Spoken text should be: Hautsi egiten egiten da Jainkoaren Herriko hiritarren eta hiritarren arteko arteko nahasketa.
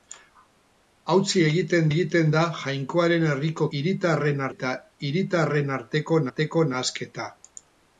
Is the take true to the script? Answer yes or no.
yes